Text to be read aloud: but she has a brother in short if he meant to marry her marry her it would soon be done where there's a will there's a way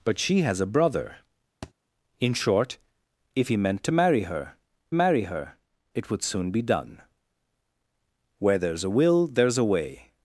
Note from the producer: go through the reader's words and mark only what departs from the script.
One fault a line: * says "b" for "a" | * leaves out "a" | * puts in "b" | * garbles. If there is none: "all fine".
all fine